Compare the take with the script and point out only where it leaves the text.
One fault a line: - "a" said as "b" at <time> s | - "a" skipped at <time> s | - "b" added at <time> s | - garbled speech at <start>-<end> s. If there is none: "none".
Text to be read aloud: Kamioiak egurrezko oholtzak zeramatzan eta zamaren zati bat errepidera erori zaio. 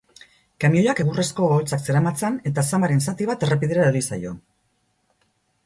none